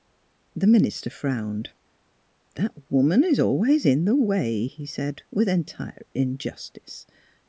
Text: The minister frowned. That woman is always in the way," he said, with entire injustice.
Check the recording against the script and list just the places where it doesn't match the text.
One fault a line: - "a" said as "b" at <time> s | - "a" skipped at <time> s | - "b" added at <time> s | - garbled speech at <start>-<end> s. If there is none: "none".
none